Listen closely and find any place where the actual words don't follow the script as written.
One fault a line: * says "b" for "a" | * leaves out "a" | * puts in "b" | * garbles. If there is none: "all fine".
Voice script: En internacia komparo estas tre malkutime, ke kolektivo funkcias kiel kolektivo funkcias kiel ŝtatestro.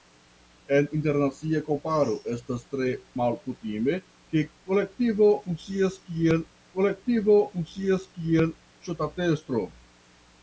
all fine